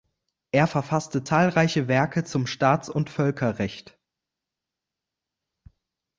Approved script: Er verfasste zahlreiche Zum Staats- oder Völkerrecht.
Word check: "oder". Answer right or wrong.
wrong